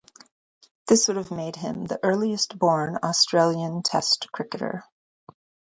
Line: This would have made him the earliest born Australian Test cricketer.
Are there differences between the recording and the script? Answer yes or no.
no